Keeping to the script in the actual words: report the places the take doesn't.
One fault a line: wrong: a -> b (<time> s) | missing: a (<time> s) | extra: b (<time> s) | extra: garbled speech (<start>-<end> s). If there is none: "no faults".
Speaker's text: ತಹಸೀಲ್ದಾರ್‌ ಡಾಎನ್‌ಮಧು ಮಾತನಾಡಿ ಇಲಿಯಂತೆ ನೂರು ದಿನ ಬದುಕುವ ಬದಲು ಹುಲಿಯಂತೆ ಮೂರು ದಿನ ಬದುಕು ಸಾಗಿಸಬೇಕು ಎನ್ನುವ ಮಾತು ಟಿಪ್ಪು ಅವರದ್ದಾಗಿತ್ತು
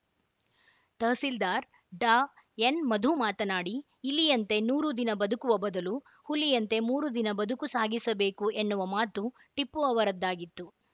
no faults